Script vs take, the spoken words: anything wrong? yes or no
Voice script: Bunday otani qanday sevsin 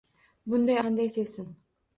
yes